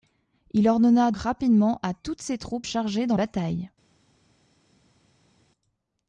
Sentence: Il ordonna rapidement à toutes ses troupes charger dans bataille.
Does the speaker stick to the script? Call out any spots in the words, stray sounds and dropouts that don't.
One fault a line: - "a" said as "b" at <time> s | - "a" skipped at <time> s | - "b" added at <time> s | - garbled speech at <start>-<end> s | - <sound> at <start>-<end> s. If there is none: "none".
none